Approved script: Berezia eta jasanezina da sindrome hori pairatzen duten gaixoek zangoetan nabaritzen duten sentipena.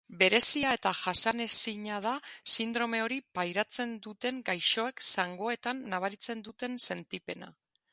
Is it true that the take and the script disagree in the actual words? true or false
false